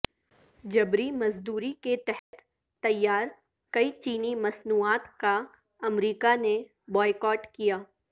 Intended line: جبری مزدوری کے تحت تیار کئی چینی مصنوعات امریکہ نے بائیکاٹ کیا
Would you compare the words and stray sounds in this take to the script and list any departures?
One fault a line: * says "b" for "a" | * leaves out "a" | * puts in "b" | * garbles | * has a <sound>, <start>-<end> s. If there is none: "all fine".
* has a dropout, 2.2-2.3 s
* puts in "کا"